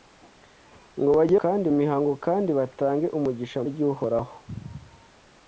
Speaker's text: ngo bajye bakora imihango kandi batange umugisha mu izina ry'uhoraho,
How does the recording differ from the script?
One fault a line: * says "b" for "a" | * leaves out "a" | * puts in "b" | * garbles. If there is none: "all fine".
* says "kandi" for "bakora"
* leaves out "mu izina"